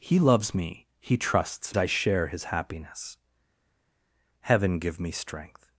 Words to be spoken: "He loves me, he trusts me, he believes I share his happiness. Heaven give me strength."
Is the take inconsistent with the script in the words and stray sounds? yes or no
yes